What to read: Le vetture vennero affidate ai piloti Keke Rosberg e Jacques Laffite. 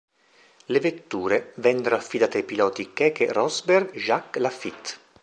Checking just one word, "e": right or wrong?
wrong